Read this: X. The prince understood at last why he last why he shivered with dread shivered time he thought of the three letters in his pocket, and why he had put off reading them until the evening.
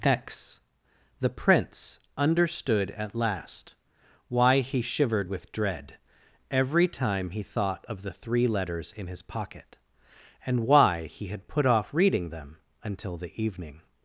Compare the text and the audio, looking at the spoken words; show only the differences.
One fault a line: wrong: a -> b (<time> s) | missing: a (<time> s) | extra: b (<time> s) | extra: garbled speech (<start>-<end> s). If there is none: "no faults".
missing: last why he (4.8 s)
wrong: shivered -> every (6.5 s)